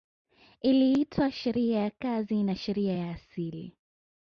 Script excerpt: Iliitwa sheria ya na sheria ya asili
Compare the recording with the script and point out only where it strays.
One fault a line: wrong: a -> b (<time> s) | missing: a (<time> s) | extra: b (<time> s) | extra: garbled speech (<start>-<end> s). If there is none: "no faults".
extra: kazi (1.9 s)